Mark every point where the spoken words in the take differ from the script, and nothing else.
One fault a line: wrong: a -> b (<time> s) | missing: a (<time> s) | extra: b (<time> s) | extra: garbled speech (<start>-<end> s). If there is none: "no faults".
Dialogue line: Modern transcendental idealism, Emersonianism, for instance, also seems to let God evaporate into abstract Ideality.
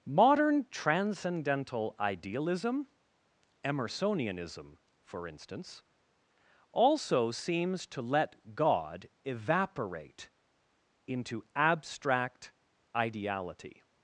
no faults